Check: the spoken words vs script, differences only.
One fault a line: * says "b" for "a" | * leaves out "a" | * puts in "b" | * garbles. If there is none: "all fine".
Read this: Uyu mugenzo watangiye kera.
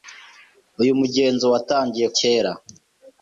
all fine